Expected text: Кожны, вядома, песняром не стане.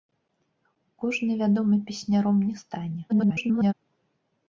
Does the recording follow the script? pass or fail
fail